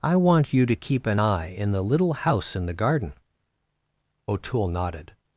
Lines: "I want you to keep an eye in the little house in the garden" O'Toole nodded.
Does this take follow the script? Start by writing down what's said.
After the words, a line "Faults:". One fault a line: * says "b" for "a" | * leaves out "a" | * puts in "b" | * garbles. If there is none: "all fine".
"I want you to keep an eye in the little house in the garden" O'Toole nodded.
Faults:
all fine